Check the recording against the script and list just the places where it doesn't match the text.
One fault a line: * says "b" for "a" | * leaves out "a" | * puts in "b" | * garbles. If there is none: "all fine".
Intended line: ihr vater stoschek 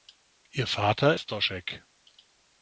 all fine